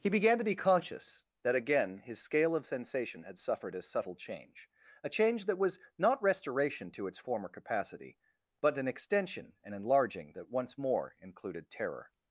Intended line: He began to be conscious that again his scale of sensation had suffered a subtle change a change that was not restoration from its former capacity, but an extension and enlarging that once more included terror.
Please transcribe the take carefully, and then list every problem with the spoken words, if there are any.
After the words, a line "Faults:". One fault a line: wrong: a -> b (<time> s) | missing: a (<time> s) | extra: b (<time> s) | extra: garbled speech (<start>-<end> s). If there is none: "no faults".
He began to be conscious that again his scale of sensation had suffered a subtle change a change that was not restoration to its former capacity, but an extension and enlarging that once more included terror.
Faults:
wrong: from -> to (6.9 s)